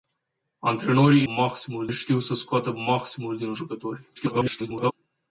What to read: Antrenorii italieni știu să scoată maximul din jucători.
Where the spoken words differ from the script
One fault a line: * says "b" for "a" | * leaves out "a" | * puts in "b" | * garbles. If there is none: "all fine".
* says "maximul" for "italieni"
* garbles